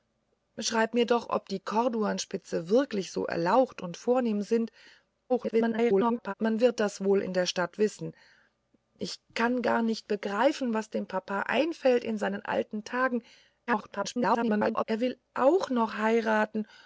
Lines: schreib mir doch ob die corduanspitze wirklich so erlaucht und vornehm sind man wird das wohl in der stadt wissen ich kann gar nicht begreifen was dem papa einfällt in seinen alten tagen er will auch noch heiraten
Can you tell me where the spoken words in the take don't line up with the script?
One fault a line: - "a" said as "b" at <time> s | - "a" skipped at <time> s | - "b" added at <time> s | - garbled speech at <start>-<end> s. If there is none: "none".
- garbled speech at 5.3-6.3 s
- garbled speech at 13.7-14.8 s